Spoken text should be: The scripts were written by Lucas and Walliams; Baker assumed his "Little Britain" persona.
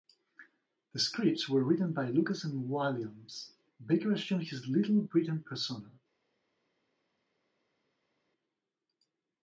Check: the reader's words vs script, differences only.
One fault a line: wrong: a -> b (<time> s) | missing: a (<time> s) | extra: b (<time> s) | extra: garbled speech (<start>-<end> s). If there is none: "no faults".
no faults